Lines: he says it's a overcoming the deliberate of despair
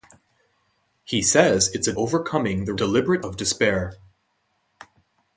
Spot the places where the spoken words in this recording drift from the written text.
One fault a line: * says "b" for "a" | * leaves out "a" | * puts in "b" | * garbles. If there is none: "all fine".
all fine